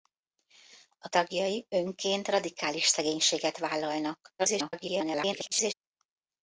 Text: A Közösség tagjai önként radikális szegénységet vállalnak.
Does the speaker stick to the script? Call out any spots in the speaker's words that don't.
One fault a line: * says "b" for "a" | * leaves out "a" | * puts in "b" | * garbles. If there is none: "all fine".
* leaves out "Közösség"
* garbles